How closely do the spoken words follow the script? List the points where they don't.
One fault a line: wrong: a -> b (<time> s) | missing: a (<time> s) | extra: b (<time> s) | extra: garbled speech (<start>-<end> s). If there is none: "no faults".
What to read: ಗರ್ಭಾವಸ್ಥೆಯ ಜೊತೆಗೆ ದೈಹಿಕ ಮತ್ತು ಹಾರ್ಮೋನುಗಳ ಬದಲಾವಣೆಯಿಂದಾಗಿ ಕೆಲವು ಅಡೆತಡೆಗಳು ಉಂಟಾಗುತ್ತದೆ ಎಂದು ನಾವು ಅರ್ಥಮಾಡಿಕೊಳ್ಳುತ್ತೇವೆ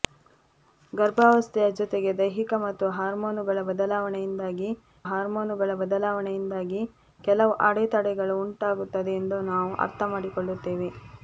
extra: ಹಾರ್ಮೋನುಗಳ ಬದಲಾವಣೆಯಿಂದಾಗಿ (5.0 s)